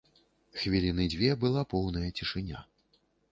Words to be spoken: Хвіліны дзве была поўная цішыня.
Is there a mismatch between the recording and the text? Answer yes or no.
no